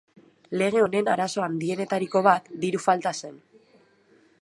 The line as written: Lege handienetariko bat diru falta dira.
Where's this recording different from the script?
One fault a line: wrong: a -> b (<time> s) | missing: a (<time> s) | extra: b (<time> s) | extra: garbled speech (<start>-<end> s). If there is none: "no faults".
extra: honen arazo (0.8 s)
wrong: dira -> zen (3.2 s)